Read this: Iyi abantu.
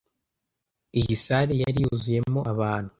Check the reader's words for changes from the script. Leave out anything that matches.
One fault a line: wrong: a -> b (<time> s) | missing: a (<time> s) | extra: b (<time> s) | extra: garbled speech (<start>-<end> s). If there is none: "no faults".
extra: salle yari yuzuyemo (1.2 s)